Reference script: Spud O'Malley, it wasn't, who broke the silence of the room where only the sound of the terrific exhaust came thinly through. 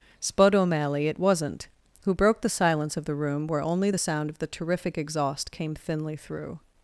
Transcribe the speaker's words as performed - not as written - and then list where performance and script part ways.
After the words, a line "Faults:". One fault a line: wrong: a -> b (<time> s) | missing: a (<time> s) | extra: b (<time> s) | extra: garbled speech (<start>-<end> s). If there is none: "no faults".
Spud O'Malley, it wasn't, who broke the silence of the room where only the sound of the terrific exhaust came thinly through.
Faults:
no faults